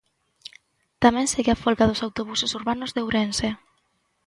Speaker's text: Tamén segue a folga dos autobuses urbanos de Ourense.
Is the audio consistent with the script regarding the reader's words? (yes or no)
yes